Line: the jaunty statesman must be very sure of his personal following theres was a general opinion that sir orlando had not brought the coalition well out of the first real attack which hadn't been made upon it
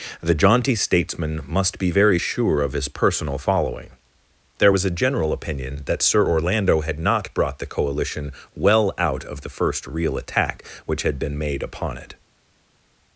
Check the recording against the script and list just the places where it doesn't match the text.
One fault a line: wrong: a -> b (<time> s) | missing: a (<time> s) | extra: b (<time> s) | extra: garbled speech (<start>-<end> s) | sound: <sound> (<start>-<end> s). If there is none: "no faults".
wrong: theres -> there (4.6 s)
wrong: hadn't -> had (11.0 s)